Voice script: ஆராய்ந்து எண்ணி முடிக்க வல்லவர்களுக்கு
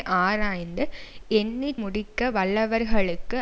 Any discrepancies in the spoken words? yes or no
no